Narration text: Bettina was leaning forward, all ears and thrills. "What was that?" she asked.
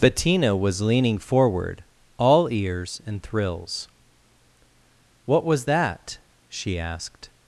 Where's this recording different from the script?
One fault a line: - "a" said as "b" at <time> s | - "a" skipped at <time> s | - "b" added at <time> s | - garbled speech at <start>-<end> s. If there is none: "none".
none